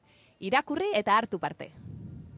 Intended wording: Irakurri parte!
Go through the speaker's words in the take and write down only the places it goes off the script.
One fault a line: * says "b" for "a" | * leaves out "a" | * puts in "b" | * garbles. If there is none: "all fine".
* puts in "eta hartu"